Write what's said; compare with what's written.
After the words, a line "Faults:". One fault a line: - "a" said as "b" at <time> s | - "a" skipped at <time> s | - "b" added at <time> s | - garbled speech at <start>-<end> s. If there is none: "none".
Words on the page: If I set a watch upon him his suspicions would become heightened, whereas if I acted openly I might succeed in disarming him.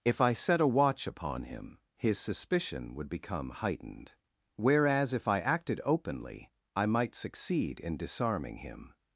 If I set a watch upon him his suspicion would become heightened, whereas if I acted openly I might succeed in disarming him.
Faults:
- "suspicions" said as "suspicion" at 2.2 s